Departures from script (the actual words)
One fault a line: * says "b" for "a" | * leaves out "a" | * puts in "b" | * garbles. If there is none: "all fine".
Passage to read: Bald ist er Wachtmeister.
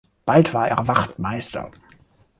* says "war" for "ist"